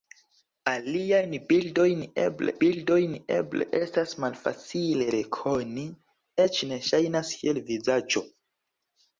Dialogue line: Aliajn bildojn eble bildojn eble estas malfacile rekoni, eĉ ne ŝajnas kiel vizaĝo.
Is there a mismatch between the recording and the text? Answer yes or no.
no